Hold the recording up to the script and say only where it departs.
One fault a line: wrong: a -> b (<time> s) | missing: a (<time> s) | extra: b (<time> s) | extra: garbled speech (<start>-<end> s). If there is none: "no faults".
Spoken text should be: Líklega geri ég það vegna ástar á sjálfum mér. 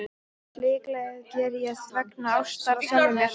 missing: það (1.8 s)